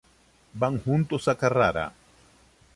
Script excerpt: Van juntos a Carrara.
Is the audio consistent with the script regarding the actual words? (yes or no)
yes